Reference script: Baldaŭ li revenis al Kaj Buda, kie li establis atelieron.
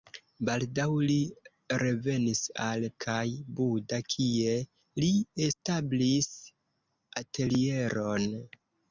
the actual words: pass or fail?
pass